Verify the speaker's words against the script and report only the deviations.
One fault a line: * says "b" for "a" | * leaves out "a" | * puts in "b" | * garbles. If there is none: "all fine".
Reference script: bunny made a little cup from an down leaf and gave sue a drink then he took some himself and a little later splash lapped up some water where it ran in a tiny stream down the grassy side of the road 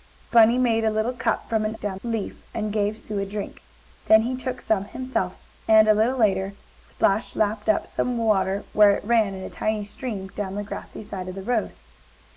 all fine